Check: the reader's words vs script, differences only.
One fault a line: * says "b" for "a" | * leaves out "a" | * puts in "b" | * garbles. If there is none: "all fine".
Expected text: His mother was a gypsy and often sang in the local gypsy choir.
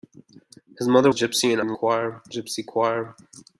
* leaves out "was"
* leaves out "often sang"
* says "choir" for "local"